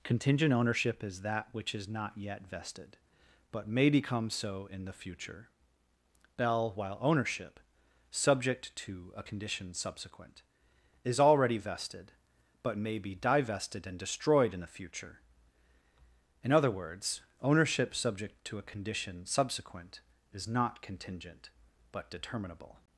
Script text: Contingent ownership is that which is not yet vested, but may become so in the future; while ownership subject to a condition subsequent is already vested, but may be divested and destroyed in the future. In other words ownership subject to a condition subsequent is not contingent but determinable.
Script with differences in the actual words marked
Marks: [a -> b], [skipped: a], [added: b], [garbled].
Contingent ownership is that which is not yet vested, but may become so in the future; [added: bell] while ownership subject to a condition subsequent is already vested, but may be divested and destroyed in the future. In other words ownership subject to a condition subsequent is not contingent but determinable.